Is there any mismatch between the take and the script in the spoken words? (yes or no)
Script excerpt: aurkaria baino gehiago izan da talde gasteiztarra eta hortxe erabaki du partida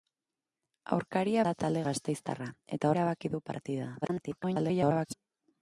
yes